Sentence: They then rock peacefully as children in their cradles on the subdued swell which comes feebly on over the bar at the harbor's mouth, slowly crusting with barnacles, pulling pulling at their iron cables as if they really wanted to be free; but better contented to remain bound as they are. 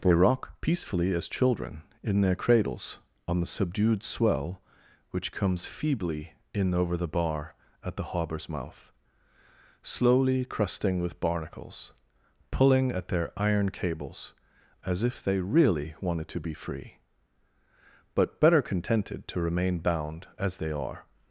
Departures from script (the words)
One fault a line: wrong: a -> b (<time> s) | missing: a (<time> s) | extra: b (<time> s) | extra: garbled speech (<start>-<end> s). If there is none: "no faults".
missing: then (0.1 s)
wrong: on -> in (6.5 s)
missing: pulling (12.9 s)